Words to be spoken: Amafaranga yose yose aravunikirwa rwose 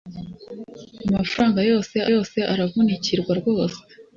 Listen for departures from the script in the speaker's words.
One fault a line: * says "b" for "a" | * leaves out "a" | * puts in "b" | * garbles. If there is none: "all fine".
all fine